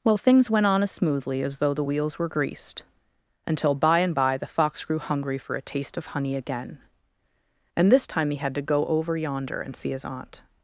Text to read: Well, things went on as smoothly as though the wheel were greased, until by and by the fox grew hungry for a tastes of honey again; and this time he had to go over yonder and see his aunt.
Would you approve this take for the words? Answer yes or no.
no